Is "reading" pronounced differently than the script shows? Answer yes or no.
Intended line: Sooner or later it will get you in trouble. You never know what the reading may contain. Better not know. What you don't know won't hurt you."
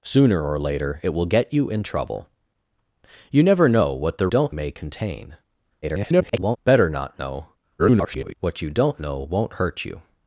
yes